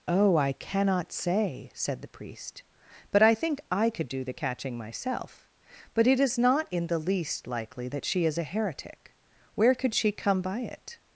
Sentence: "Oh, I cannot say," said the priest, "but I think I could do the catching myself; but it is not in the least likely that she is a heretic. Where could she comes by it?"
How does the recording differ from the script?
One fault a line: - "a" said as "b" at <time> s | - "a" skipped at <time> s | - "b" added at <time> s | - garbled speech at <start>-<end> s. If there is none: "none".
- "comes" said as "come" at 10.1 s